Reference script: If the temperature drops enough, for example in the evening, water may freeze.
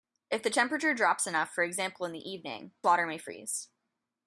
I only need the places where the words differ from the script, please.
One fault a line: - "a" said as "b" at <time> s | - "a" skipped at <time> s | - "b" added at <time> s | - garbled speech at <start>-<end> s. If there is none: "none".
none